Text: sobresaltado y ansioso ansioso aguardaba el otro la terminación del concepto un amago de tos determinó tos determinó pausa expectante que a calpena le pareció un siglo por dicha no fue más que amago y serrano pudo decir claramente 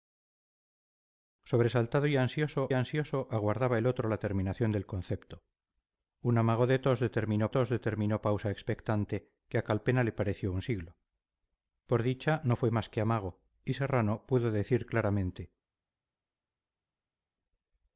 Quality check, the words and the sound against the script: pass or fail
pass